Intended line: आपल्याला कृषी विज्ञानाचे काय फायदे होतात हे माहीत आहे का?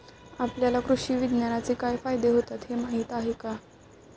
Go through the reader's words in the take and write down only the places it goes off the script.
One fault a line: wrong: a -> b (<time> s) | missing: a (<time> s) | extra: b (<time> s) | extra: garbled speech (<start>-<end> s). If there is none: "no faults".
no faults